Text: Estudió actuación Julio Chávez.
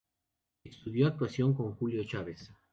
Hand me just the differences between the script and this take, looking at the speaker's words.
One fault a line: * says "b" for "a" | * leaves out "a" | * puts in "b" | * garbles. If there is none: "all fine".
* puts in "con"